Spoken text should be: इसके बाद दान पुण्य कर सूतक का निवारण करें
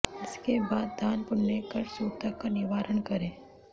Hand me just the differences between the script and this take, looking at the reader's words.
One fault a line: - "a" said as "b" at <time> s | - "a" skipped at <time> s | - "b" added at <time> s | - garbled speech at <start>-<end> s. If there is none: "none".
none